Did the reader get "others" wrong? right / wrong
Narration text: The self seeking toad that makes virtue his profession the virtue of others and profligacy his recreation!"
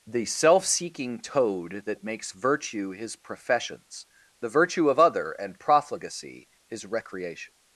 wrong